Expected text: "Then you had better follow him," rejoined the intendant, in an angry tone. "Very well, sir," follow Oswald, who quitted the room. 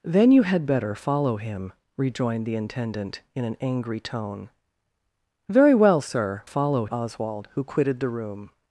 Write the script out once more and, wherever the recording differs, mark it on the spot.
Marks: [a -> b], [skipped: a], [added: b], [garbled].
"Then you had better follow him," rejoined the intendant, in an angry tone. "Very well, sir," follow Oswald, who quitted the room.